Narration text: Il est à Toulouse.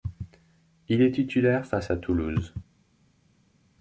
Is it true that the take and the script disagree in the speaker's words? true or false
true